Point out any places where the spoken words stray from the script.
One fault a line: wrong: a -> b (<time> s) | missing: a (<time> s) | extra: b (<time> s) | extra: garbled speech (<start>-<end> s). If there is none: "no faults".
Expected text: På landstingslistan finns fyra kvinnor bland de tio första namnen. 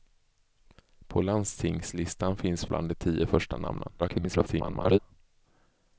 missing: fyra kvinnor (2.6 s)
extra: garbled speech (4.0-5.0 s)